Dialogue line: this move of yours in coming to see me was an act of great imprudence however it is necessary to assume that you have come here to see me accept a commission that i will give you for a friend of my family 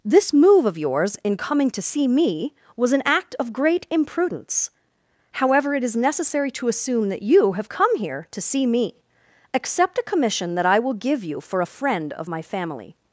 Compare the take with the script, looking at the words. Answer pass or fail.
pass